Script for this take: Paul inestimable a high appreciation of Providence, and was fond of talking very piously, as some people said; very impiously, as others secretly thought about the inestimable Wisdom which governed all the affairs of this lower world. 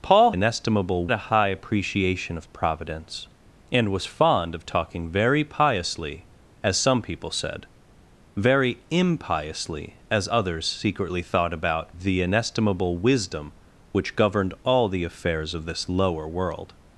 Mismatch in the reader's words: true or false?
false